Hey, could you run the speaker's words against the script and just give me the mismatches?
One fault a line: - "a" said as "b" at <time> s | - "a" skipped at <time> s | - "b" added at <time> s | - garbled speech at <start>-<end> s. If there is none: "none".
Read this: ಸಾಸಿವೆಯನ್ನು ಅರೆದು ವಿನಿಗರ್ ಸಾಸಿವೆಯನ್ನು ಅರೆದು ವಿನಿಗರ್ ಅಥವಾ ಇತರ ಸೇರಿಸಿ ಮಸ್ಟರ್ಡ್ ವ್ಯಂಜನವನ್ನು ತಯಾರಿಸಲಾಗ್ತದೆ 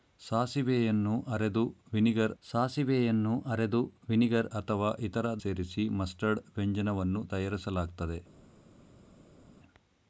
none